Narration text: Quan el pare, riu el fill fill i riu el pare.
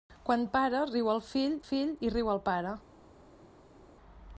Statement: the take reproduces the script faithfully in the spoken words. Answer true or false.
true